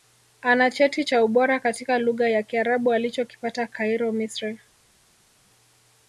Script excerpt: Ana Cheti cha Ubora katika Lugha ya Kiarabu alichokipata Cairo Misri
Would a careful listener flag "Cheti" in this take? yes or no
no